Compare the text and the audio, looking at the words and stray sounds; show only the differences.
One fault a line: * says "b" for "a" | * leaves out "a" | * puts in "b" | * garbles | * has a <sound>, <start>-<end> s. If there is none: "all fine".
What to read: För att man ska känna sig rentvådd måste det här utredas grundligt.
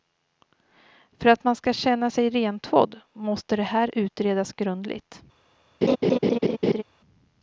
* has a laugh, 5.8-6.8 s